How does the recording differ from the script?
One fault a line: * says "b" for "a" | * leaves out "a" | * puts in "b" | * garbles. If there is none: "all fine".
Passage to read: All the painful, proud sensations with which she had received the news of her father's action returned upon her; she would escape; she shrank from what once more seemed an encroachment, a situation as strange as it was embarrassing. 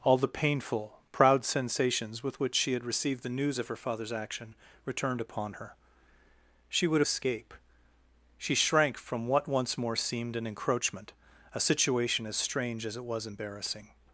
all fine